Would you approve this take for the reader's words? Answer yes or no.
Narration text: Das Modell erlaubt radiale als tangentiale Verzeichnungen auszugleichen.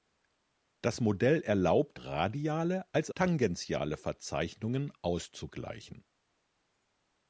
yes